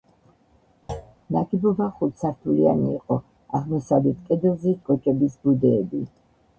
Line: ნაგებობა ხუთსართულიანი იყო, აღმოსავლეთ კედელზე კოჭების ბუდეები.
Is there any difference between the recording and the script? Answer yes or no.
no